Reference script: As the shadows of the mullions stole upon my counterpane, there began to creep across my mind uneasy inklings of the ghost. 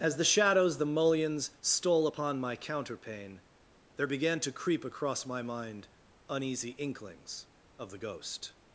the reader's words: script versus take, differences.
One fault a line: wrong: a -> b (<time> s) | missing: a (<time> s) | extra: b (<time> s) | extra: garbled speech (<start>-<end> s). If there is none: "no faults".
missing: of (0.8 s)